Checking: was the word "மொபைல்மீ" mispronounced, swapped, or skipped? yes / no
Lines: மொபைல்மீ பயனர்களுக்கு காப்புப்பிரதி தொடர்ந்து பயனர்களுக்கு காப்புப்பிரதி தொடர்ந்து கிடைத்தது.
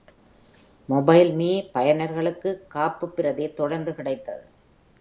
no